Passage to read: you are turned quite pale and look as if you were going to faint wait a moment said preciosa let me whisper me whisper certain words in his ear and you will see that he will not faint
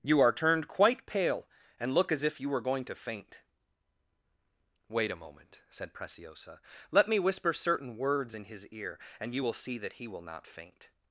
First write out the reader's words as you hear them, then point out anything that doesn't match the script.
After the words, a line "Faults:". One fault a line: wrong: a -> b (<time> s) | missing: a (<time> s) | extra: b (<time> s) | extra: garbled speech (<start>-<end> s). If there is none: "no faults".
you are turned quite pale and look as if you were going to faint wait a moment said preciosa let me whisper certain words in his ear and you will see that he will not faint
Faults:
missing: me whisper (7.5 s)